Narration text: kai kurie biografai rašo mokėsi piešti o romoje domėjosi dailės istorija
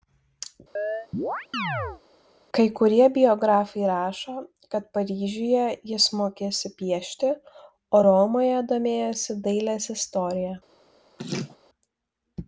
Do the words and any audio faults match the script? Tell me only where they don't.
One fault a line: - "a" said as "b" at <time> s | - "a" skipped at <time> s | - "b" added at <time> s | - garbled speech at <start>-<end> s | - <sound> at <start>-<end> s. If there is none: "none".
- chirp at 0.8-2.0 s
- "kad paryžiuje jis" added at 4.7 s
- laugh at 11.2-11.6 s